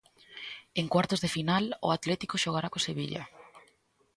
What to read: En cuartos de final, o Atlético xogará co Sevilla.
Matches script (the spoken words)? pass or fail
pass